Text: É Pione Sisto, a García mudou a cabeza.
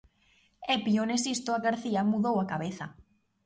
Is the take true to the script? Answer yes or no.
yes